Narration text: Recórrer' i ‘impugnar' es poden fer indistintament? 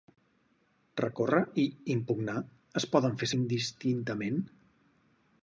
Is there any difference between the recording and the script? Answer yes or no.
no